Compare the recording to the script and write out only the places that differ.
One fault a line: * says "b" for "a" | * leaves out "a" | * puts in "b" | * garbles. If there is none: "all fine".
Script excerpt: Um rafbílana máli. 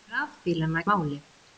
all fine